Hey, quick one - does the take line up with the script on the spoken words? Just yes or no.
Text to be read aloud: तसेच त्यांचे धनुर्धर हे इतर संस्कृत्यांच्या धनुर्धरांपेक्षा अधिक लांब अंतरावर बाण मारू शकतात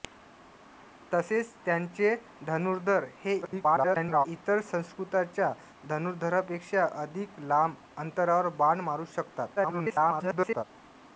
no